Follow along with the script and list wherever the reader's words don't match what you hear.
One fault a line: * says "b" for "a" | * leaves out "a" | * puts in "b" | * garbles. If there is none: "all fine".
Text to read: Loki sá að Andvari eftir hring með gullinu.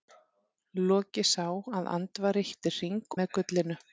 all fine